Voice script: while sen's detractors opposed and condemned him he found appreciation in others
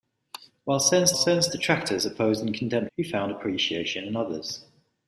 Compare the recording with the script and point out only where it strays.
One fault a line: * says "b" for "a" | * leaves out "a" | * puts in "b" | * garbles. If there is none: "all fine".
* puts in "sen's"
* leaves out "him"